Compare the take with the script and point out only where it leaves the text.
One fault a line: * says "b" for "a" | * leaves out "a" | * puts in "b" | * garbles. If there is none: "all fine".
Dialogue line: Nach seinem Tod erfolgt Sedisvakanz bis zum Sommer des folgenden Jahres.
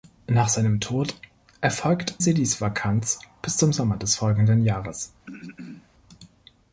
all fine